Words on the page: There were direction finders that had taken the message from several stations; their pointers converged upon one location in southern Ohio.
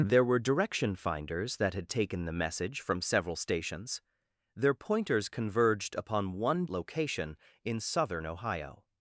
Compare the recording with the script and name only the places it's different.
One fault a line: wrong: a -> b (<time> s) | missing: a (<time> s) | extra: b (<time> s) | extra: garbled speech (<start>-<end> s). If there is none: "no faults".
no faults